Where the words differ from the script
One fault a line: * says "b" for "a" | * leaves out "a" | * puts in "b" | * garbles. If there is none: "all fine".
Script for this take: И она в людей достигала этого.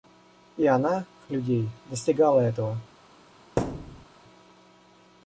all fine